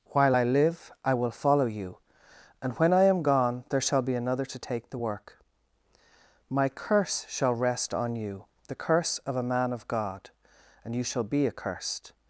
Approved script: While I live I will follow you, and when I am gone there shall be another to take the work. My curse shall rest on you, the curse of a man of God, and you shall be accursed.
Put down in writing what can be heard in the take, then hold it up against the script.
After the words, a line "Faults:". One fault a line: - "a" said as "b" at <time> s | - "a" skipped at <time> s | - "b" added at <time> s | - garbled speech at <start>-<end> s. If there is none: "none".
While I live I will follow you, and when I am gone there shall be another to take the work. My curse shall rest on you, the curse of a man of God, and you shall be accursed.
Faults:
none